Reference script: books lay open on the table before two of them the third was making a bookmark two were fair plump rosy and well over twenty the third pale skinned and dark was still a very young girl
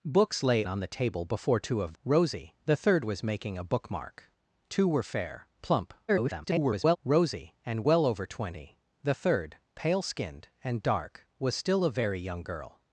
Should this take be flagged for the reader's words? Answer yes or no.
yes